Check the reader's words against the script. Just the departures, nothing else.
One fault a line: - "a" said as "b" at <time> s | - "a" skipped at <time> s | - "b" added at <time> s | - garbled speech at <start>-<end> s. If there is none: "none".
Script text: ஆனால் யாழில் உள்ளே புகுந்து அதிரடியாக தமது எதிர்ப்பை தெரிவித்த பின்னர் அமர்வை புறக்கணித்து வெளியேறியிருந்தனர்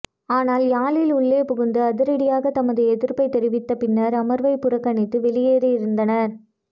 none